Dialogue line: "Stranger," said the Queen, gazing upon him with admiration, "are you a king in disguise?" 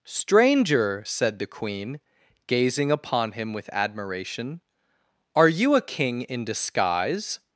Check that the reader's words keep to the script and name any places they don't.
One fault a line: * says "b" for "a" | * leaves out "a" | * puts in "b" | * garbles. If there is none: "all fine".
all fine